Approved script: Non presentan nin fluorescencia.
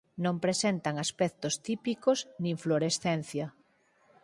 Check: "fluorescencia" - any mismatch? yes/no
no